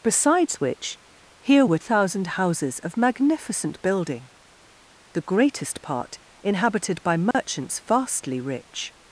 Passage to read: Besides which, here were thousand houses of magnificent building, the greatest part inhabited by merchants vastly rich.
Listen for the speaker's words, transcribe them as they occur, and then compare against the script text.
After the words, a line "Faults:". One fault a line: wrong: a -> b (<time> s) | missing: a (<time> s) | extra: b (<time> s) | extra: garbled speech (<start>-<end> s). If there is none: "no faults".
Besides which, here were thousand houses of magnificent building, the greatest part inhabited by merchants vastly rich.
Faults:
no faults